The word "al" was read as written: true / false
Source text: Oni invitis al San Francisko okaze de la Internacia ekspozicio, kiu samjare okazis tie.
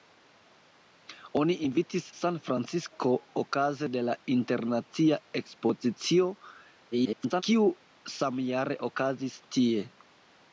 false